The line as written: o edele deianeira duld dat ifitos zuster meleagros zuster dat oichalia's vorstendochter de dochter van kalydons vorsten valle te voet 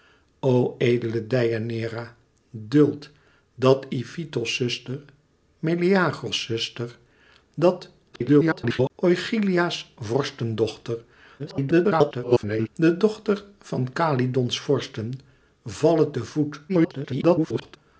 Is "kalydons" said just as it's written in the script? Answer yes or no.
yes